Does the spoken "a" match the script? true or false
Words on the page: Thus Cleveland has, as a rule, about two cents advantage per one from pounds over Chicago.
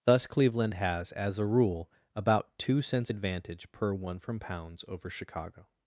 true